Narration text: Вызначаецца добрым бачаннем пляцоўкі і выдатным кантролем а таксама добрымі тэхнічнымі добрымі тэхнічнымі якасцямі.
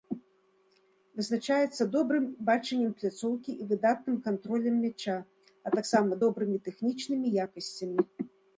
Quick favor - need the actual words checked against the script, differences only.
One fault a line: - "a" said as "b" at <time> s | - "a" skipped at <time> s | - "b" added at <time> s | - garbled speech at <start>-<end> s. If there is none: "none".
- "мяча" added at 4.9 s
- "добрымі тэхнічнымі" skipped at 7.3 s